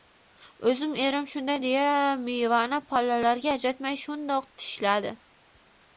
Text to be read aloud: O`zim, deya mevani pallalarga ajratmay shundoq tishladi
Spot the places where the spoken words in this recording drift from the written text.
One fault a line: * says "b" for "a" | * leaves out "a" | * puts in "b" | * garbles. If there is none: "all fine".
* puts in "erim shunday"